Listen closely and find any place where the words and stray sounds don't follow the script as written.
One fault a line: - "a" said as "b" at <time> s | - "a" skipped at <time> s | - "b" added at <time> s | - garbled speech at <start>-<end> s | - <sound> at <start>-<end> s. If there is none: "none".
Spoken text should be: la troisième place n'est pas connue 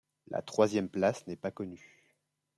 none